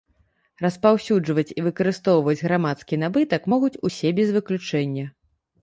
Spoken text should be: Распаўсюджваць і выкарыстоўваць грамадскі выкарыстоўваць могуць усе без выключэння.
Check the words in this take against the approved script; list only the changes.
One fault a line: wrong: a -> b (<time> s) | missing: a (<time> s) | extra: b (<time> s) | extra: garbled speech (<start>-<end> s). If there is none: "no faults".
wrong: выкарыстоўваць -> набытак (3.0 s)